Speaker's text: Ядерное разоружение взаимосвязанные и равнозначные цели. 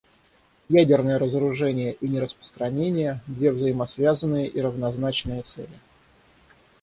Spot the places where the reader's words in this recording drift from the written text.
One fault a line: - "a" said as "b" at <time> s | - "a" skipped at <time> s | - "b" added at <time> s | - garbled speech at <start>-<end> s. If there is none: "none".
- "и нераспространение две" added at 1.9 s